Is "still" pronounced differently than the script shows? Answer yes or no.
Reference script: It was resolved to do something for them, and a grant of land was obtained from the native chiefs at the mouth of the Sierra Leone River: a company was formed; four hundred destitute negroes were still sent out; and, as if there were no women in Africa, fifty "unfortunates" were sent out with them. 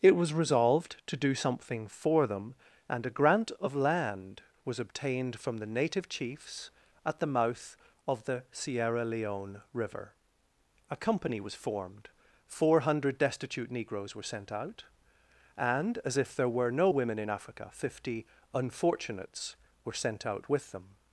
yes